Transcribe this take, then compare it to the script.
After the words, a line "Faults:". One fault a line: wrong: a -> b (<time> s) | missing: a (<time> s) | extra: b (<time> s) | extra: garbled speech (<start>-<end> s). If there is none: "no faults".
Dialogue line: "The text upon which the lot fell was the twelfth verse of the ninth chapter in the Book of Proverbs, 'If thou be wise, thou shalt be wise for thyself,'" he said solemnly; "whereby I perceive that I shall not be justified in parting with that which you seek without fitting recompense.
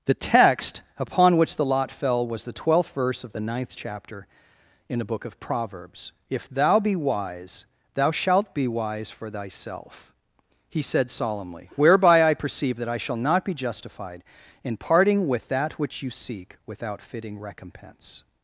"The text upon which the lot fell was the twelfth verse of the ninth chapter in the Book of Proverbs, 'If thou be wise, thou shalt be wise for thyself,'" he said solemnly; "whereby I perceive that I shall not be justified in parting with that which you seek without fitting recompense.
Faults:
no faults